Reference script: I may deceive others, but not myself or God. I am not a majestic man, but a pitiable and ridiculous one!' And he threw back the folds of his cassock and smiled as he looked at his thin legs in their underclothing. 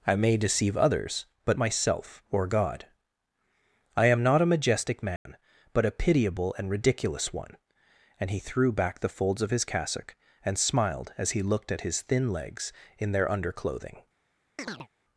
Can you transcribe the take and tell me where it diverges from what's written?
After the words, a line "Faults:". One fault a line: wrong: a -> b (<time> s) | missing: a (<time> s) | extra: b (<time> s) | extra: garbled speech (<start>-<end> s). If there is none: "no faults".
I may deceive others, but myself or God. I am not a majestic man, but a pitiable and ridiculous one!' And he threw back the folds of his cassock and smiled as he looked at his thin legs in their underclothing.
Faults:
missing: not (1.6 s)